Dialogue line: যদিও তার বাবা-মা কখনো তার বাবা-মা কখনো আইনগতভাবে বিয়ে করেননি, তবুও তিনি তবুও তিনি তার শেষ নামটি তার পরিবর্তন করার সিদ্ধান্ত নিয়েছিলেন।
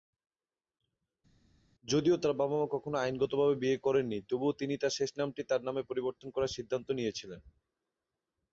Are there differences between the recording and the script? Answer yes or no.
yes